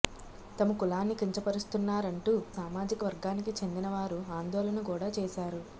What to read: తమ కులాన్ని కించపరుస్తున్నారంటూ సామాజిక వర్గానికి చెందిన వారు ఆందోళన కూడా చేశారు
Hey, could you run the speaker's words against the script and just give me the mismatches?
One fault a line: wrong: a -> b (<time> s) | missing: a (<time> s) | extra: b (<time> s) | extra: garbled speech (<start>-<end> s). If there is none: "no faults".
no faults